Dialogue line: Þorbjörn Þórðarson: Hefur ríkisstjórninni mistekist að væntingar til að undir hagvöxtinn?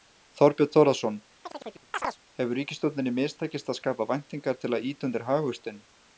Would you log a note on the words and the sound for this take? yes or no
yes